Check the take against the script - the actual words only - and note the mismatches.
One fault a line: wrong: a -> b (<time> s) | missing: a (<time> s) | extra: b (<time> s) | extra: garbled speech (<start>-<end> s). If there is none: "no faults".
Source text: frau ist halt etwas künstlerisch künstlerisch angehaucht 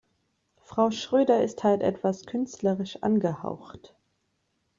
extra: schröder (0.9 s)
missing: künstlerisch (3.0 s)